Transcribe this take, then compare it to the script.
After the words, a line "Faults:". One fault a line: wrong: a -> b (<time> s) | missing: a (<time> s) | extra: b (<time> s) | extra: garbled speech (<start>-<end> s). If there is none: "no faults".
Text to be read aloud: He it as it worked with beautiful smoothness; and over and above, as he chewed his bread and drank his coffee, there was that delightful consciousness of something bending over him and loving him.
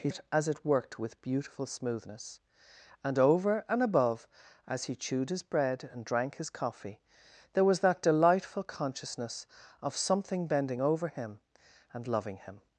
He it as it worked with beautiful smoothness; and over and above, as he chewed his bread and drank his coffee, there was that delightful consciousness of something bending over him and loving him.
Faults:
no faults